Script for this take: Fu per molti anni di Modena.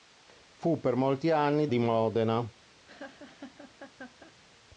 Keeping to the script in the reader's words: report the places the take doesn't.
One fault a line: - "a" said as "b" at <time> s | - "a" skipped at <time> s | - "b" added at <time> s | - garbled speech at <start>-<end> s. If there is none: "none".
none